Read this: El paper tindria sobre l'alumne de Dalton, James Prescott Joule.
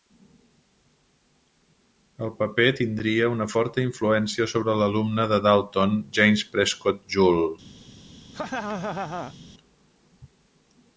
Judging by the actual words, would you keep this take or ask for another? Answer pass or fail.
fail